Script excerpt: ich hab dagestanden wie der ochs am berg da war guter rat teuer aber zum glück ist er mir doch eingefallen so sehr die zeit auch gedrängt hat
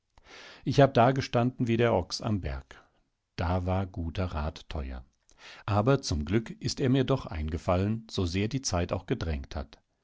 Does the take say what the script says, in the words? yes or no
yes